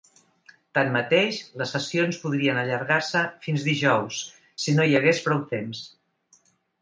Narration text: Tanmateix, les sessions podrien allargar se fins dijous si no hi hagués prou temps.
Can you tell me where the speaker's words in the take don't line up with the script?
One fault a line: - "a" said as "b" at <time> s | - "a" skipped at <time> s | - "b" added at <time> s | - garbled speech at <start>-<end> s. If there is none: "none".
none